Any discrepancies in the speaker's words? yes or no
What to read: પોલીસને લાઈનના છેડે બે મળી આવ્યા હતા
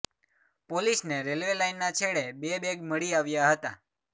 yes